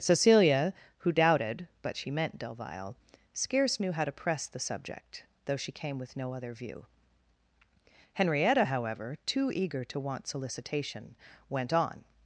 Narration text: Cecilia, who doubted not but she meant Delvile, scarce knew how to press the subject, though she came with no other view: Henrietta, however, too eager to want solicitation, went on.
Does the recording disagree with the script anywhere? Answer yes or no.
yes